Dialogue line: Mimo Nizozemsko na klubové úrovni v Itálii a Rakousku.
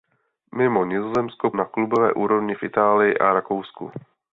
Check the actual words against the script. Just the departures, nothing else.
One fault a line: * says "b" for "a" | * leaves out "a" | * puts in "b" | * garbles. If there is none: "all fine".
all fine